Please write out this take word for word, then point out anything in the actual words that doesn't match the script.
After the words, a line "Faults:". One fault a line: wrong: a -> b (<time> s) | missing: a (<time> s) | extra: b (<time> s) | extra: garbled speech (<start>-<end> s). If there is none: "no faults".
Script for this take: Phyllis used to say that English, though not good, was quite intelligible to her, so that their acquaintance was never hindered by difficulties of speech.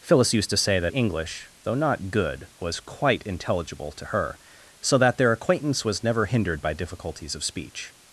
Phyllis used to say that English, though not good, was quite intelligible to her, so that their acquaintance was never hindered by difficulties of speech.
Faults:
no faults